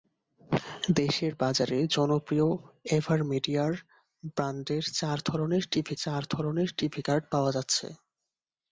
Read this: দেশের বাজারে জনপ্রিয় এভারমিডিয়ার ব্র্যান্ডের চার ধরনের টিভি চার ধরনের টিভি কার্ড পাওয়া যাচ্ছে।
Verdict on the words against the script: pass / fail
pass